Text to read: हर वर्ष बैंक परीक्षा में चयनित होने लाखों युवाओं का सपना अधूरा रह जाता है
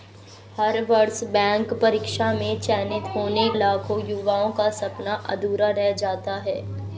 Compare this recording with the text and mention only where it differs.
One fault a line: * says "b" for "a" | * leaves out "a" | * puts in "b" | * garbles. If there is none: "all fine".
all fine